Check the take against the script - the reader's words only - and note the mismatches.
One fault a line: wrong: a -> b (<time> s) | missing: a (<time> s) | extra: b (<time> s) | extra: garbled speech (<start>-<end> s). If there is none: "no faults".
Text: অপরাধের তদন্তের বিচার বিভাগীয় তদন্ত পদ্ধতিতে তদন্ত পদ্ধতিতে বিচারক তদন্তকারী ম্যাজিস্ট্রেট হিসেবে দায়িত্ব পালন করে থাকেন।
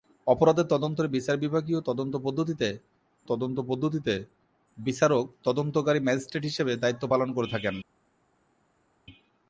no faults